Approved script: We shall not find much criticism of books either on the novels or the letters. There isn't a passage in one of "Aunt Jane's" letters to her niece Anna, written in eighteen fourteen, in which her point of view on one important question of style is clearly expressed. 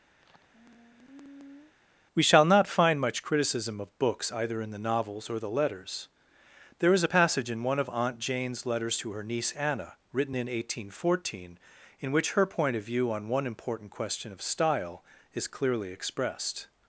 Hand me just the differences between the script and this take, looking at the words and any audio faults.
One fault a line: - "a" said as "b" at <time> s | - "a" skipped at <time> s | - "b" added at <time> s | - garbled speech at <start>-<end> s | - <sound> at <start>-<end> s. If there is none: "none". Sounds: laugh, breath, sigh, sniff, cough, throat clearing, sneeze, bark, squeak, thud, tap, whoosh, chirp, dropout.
- sigh at 0.2-1.8 s
- "on" said as "in" at 4.6 s
- "isn't" said as "is" at 6.9 s